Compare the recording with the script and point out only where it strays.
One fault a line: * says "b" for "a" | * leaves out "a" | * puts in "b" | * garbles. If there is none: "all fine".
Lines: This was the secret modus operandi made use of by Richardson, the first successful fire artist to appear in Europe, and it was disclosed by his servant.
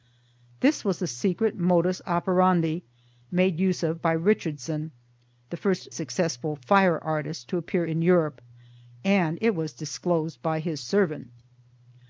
all fine